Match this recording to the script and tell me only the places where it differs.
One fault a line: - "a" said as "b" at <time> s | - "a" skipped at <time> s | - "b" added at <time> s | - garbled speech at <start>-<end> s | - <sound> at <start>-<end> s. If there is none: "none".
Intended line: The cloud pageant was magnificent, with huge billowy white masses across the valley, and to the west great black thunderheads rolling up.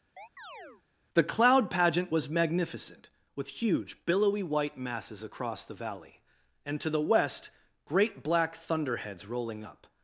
- chirp at 0.2-0.8 s